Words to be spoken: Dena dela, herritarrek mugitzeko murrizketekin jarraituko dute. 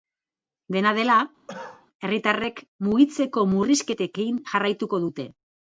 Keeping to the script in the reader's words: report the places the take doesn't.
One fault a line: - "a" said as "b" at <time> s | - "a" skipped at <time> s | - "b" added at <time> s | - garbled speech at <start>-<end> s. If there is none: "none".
none